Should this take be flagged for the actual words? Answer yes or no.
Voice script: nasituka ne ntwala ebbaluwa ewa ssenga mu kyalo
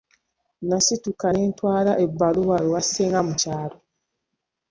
no